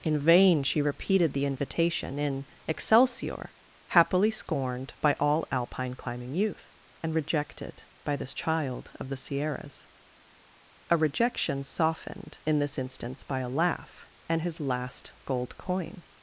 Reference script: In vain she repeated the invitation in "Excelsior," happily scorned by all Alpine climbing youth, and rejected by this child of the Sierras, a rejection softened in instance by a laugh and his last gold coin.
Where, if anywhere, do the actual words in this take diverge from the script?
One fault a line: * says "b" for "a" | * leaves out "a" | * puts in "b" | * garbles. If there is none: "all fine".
* puts in "this"